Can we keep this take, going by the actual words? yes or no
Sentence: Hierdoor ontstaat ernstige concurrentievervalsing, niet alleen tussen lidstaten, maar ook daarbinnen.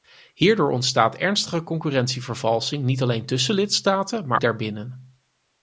no